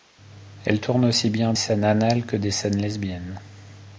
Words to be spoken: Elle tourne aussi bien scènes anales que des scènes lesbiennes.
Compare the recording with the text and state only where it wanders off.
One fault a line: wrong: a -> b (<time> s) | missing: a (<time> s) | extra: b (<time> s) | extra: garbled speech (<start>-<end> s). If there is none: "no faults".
no faults